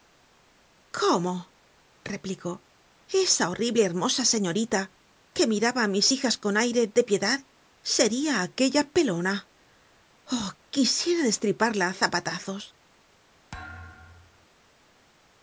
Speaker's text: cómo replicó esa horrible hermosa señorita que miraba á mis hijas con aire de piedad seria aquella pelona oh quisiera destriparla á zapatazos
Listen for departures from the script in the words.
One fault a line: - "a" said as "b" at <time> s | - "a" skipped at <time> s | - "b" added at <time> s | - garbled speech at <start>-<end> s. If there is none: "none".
none